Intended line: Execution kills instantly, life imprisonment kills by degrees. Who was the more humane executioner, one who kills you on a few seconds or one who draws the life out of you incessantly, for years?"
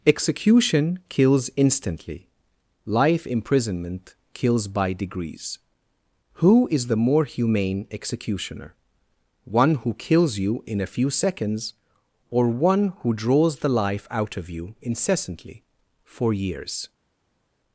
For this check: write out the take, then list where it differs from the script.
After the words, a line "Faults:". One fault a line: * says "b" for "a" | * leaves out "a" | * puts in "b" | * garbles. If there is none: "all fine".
Execution kills instantly, life imprisonment kills by degrees. Who is the more humane executioner, one who kills you in a few seconds or one who draws the life out of you incessantly, for years?"
Faults:
* says "is" for "was"
* says "in" for "on"